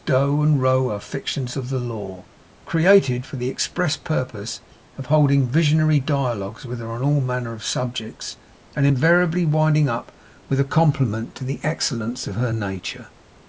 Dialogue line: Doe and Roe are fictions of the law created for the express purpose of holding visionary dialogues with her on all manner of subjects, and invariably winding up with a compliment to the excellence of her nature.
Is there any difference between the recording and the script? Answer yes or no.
no